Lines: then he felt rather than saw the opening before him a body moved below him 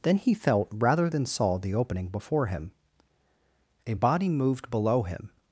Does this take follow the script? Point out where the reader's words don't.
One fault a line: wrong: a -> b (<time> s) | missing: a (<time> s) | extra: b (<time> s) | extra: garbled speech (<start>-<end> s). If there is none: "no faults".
no faults